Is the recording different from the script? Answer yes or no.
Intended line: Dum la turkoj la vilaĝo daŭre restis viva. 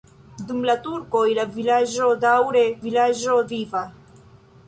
yes